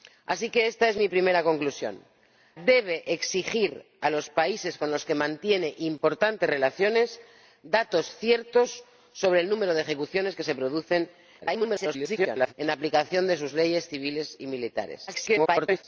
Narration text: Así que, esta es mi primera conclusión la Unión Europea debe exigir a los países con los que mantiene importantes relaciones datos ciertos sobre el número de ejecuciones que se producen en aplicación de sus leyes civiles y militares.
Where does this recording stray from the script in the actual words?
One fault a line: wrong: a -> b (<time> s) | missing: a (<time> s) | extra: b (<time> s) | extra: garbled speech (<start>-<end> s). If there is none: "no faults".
missing: la Unión Europea (2.0 s)
extra: garbled speech (11.4-12.5 s)
extra: garbled speech (15.1-15.8 s)